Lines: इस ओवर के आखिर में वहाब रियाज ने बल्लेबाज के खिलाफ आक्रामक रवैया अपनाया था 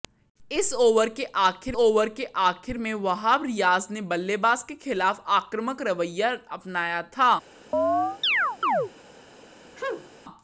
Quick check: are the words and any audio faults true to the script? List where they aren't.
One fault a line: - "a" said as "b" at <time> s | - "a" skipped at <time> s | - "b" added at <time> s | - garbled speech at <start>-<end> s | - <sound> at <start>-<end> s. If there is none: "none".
- "ओवर के आखिर" added at 1.7 s
- chirp at 7.7-8.9 s
- sneeze at 9.8-10.1 s